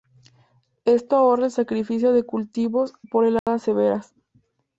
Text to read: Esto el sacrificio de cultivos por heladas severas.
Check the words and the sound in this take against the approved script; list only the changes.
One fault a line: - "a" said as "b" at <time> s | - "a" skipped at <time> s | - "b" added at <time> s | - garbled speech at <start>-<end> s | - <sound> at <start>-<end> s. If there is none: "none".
- "ahorra" added at 1.1 s
- dropout at 3.4-3.5 s